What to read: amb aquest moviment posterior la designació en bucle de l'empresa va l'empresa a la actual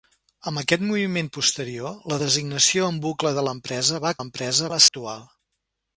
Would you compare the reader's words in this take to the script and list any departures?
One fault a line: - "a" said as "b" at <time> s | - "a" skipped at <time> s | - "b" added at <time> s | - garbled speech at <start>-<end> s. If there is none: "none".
none